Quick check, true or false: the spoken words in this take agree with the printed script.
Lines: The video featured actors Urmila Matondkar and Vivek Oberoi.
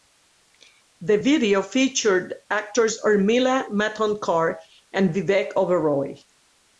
true